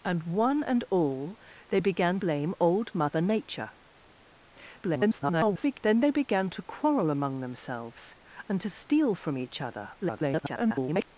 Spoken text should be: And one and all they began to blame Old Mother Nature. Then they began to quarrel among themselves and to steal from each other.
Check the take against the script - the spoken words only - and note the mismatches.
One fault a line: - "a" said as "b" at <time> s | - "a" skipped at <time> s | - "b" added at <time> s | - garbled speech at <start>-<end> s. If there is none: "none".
- "to" skipped at 2.2 s
- garbled speech at 4.8-5.8 s
- garbled speech at 10.0-11.1 s